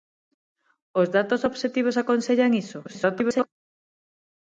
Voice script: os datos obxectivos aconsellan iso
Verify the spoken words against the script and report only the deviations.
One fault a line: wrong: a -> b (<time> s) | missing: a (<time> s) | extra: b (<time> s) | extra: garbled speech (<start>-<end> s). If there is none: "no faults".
extra: garbled speech (2.8-3.5 s)